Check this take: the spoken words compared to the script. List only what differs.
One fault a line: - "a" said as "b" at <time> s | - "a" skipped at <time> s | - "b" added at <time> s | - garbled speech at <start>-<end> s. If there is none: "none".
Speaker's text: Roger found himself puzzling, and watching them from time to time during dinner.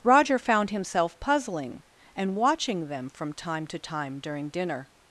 none